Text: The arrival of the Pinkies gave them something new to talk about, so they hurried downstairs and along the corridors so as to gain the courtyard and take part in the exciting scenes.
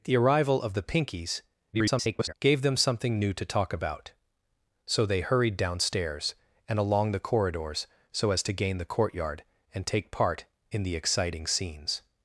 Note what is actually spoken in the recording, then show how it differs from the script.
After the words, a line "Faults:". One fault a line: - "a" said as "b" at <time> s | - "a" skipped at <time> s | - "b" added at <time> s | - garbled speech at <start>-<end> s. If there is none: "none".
The arrival of the Pinkies [garbled] gave them something new to talk about, so they hurried downstairs and along the corridors so as to gain the courtyard and take part in the exciting scenes.
Faults:
- garbled speech at 1.7-2.3 s